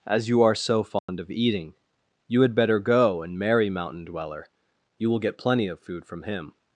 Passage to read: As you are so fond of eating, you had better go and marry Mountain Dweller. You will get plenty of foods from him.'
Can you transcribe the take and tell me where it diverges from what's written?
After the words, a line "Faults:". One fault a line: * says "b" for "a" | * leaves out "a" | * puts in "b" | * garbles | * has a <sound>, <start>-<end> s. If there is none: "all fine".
As you are so fond of eating, you had better go and marry Mountain Dweller. You will get plenty of food from him.'
Faults:
* has a dropout, 1.0-1.1 s
* says "food" for "foods"